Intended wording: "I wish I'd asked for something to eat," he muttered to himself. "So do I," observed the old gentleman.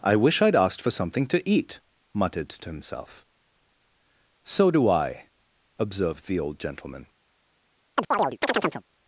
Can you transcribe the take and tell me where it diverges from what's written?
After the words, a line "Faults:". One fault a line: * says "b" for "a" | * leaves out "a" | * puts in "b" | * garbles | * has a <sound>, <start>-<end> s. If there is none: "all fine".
"I wish I'd asked for something to eat," muttered to himself. "So do I," observed the old gentleman.
Faults:
* leaves out "he"
* has a chirp, 8.0-8.8 s